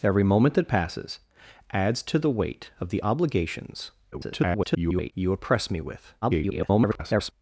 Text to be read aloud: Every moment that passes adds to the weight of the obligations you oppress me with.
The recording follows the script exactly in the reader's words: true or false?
false